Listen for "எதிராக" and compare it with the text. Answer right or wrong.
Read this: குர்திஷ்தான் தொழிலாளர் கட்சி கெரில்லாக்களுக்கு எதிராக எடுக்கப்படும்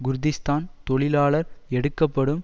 wrong